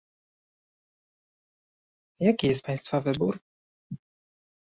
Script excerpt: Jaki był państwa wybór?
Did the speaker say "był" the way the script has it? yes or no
no